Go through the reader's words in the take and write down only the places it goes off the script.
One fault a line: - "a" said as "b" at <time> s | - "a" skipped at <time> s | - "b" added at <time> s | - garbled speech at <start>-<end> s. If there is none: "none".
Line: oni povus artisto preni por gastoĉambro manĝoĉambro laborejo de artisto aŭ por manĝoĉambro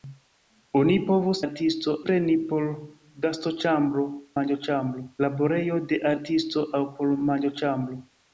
none